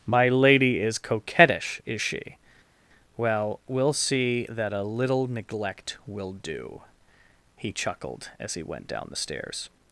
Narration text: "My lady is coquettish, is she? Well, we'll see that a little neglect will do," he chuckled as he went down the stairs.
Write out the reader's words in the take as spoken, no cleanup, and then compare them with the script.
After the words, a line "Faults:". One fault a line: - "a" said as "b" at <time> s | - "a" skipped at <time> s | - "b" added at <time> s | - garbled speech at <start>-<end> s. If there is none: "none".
"My lady is coquettish, is she? Well, we'll see that a little neglect will do," he chuckled as he went down the stairs.
Faults:
none